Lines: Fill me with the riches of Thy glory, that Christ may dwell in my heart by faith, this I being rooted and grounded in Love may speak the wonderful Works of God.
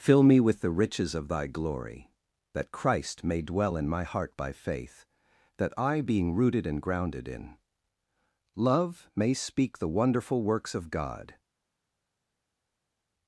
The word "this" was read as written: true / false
false